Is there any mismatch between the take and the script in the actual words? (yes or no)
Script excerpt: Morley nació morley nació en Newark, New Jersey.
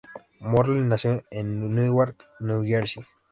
yes